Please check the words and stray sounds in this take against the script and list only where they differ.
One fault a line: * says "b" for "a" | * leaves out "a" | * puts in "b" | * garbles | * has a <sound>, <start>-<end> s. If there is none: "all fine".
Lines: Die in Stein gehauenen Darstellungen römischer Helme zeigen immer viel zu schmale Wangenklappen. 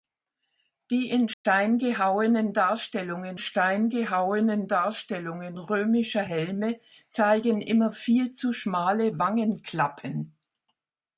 * has a dropout, 1.3-1.4 s
* puts in "Stein gehauenen Darstellungen"